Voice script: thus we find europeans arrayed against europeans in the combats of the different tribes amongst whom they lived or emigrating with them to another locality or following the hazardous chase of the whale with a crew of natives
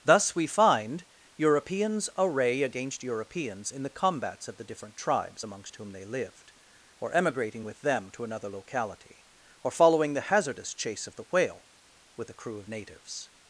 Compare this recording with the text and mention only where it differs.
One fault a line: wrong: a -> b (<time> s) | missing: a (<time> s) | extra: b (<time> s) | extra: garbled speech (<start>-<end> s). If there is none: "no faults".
wrong: arrayed -> array (2.2 s)